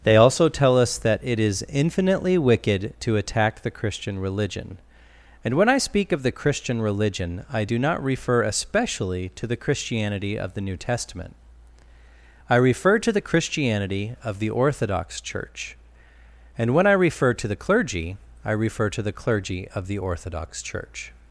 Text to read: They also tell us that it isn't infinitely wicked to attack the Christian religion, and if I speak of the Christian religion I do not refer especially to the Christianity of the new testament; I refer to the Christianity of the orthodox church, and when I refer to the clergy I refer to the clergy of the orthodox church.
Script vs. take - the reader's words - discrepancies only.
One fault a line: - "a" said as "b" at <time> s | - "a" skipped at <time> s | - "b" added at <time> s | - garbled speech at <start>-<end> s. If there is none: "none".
- "isn't" said as "is" at 1.4 s
- "if" said as "when" at 5.5 s